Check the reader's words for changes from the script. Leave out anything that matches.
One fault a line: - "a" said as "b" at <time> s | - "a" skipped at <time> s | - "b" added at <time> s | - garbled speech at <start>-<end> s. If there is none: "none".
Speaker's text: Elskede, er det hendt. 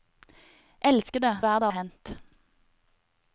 none